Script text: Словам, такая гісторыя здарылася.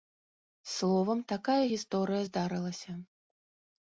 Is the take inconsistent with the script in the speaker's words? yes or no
no